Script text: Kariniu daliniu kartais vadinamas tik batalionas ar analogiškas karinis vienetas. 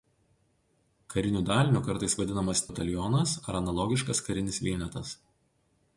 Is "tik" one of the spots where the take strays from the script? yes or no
yes